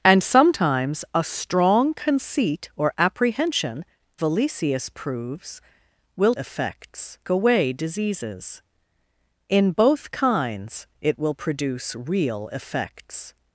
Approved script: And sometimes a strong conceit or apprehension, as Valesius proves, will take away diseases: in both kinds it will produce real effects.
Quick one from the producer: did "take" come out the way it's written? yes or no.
no